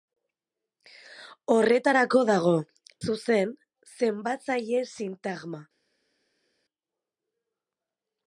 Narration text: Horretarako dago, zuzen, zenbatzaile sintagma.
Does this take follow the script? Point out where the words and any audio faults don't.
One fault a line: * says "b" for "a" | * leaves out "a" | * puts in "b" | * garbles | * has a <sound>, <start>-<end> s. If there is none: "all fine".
all fine